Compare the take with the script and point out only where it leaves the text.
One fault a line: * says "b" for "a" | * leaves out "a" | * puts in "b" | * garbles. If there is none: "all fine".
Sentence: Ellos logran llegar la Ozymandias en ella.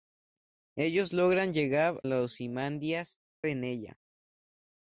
all fine